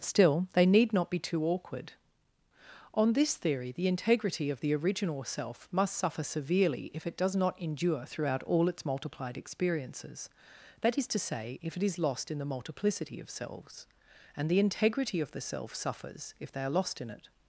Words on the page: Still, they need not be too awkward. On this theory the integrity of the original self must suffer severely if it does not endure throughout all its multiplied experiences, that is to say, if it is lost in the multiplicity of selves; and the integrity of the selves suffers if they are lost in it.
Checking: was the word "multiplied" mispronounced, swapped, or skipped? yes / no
no